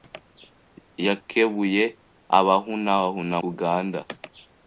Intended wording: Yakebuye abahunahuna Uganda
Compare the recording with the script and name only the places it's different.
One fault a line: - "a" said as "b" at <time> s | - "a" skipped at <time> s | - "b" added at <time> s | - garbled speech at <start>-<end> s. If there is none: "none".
none